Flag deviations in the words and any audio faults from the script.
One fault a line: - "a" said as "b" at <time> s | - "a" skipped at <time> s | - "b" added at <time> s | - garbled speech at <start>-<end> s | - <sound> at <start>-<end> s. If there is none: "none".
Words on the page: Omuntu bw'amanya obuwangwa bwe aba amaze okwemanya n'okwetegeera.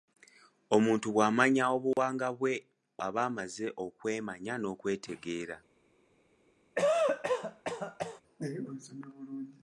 - dropout at 1.9-2.0 s
- cough at 6.7-8.2 s